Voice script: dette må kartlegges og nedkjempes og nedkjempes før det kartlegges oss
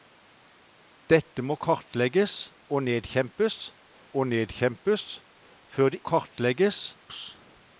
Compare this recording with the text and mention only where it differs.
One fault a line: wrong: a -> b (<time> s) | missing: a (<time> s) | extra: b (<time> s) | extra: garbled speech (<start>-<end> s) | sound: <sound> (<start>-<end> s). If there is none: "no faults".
no faults